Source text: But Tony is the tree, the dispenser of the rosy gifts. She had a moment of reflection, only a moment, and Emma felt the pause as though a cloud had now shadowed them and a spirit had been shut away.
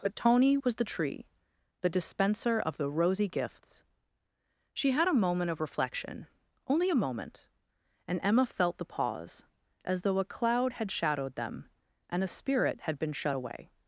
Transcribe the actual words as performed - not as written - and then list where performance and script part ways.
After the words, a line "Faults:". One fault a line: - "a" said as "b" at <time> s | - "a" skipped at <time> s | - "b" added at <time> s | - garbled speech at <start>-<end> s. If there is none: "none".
But Tony was the tree, the dispenser of the rosy gifts. She had a moment of reflection, only a moment, and Emma felt the pause as though a cloud had shadowed them and a spirit had been shut away.
Faults:
- "is" said as "was" at 0.6 s
- "now" skipped at 10.9 s